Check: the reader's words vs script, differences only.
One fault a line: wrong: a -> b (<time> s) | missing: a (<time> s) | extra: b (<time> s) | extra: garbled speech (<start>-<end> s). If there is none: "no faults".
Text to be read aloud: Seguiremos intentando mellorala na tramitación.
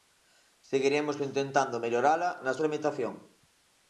no faults